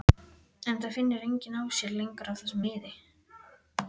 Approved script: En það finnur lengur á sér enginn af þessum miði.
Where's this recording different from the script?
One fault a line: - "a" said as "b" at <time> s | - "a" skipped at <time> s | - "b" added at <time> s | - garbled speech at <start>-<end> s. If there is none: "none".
- "lengur" said as "enginn" at 1.3 s
- "enginn" said as "lengur" at 2.0 s